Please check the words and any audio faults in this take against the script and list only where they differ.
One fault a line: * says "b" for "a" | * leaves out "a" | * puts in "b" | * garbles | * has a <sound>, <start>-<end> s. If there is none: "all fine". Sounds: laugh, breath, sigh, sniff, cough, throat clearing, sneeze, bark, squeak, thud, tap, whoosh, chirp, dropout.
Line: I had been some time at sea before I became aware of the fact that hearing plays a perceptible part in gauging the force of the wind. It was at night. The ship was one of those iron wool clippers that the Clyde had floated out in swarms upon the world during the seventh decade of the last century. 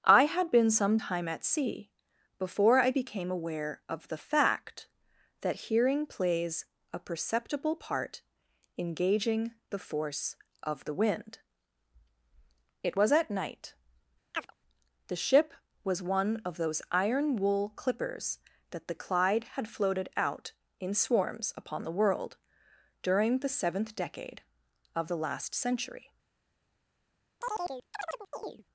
* has a chirp, 14.3-14.5 s
* has a chirp, 27.4-28.6 s